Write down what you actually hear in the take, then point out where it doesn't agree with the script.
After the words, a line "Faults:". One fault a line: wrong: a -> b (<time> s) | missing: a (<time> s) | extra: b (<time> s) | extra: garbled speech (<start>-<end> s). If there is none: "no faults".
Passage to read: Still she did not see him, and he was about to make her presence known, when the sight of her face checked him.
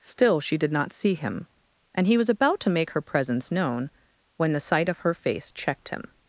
Still she did not see him, and he was about to make her presence known, when the sight of her face checked him.
Faults:
no faults